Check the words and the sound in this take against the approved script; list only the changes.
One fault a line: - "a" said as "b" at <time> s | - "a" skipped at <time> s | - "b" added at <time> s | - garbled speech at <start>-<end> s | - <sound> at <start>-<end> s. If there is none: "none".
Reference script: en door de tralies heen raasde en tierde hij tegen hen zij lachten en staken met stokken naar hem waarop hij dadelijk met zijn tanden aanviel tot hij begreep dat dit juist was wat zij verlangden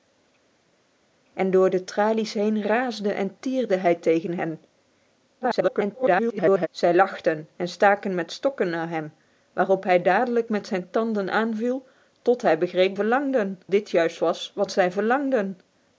- garbled speech at 5.4-6.7 s
- "dat" said as "verlangden" at 12.9 s